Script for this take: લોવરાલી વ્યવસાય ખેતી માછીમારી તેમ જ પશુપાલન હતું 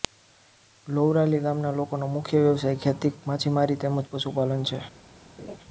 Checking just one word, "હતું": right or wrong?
wrong